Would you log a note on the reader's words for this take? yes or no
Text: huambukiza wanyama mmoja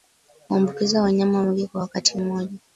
yes